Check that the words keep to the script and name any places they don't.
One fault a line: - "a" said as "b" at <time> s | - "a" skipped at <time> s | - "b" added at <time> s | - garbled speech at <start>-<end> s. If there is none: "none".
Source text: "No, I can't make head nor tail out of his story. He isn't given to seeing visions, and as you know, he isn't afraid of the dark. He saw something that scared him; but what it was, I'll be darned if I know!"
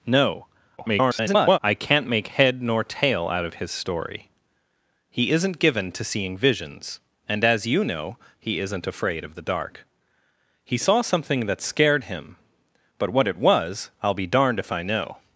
- garbled speech at 0.8-1.6 s